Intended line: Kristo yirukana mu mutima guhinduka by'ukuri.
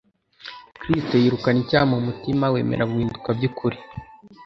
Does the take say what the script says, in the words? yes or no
no